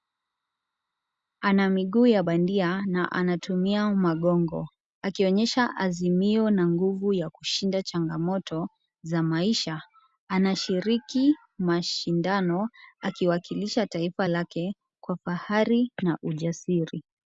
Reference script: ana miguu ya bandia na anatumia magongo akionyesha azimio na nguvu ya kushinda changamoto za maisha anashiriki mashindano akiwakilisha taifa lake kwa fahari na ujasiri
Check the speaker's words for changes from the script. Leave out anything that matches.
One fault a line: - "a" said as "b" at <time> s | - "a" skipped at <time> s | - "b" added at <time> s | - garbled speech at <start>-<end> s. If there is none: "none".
none